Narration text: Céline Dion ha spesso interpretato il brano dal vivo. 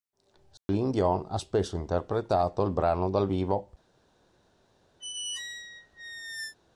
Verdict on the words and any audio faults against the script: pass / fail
fail